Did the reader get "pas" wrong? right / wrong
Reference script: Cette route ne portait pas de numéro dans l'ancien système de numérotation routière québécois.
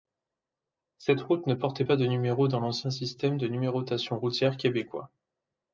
right